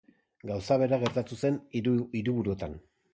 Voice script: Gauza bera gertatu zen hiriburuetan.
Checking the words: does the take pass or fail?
fail